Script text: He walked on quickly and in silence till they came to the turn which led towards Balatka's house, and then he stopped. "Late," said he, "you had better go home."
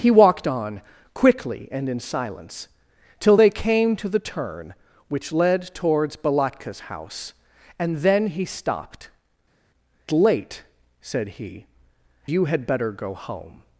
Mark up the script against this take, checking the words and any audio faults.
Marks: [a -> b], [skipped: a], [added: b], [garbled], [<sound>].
He walked on quickly and in silence till they came to the turn which led towards Balatka's house, and then he stopped. "Late," said he, "you had better go home."